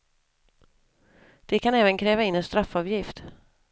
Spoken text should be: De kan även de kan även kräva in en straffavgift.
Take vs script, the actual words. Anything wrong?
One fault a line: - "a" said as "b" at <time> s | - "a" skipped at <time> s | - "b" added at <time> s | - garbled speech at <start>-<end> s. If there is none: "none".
- "de kan även" skipped at 2.0 s